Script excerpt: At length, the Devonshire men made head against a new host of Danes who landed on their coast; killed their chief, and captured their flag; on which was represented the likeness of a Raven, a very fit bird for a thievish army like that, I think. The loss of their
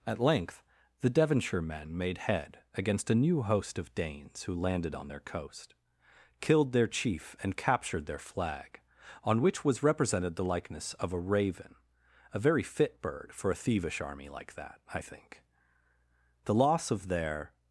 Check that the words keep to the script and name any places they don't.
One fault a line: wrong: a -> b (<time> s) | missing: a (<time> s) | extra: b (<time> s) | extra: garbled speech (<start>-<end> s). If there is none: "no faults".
no faults